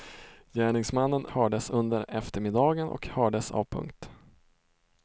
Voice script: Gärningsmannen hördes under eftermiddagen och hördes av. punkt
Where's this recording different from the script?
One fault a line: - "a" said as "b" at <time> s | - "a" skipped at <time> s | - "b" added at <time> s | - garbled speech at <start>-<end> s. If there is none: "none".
none